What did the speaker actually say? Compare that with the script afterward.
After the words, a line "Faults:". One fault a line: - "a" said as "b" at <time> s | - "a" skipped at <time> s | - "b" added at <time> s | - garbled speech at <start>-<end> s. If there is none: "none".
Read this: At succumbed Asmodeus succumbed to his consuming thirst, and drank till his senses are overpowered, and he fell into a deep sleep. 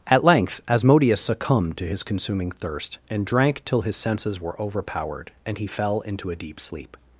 At length Asmodeus succumbed to his consuming thirst, and drank till his senses were overpowered, and he fell into a deep sleep.
Faults:
- "succumbed" said as "length" at 0.2 s
- "are" said as "were" at 4.4 s